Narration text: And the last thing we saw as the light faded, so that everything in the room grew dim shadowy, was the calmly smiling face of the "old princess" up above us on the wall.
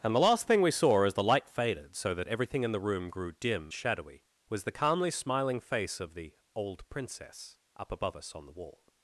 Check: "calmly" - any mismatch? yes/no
no